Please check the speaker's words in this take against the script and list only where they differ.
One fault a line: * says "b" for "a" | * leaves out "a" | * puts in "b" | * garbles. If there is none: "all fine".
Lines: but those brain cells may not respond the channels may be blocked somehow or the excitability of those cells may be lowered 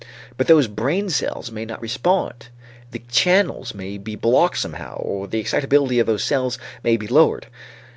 all fine